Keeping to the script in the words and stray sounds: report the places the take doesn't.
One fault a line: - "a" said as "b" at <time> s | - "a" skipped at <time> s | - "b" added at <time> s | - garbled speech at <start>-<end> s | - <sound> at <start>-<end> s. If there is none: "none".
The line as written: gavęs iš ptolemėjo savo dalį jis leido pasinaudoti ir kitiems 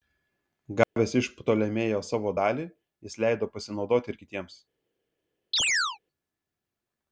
- dropout at 0.8-1.0 s
- chirp at 5.5-6.0 s